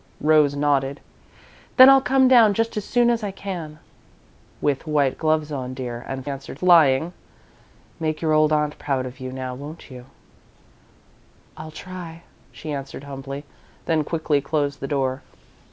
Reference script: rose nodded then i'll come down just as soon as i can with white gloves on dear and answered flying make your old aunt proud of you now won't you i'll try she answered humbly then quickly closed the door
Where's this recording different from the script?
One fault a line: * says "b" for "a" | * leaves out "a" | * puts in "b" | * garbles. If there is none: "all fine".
all fine